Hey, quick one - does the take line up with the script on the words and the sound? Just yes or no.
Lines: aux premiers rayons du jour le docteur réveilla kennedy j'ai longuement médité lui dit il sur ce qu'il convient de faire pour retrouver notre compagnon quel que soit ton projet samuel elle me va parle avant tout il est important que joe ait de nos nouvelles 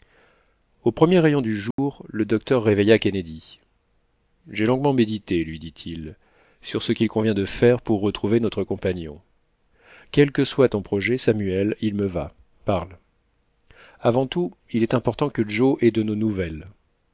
no